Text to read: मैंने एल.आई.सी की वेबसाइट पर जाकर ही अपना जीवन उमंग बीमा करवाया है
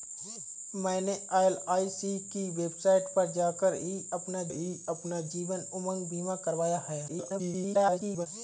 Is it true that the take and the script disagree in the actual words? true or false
true